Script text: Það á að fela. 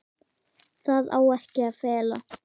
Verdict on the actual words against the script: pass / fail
fail